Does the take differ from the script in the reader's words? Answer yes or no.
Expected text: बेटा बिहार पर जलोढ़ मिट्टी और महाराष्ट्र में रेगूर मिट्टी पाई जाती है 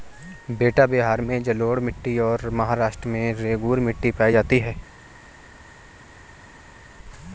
yes